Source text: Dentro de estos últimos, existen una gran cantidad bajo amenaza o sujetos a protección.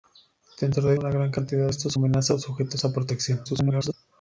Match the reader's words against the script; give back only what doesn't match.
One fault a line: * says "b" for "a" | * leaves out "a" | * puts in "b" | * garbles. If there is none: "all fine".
* leaves out "estos últimos existen"
* says "estos" for "bajo"
* garbles